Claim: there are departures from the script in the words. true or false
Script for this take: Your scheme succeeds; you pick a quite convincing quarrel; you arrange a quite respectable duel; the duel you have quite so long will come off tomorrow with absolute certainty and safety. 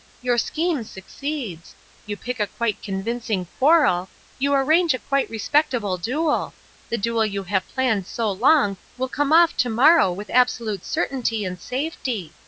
true